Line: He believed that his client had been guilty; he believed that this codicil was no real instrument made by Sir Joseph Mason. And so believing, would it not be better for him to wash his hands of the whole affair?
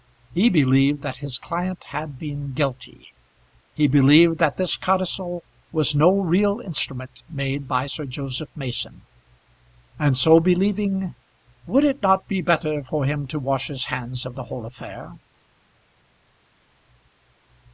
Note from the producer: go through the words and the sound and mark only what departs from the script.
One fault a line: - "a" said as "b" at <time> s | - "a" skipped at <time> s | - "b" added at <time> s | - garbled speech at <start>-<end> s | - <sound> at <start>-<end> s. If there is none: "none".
none